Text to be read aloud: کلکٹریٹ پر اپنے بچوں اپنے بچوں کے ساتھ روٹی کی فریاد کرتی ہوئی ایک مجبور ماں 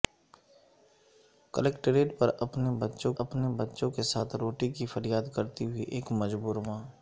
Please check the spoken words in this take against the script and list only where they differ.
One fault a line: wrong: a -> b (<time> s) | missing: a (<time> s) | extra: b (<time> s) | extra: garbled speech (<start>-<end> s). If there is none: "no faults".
no faults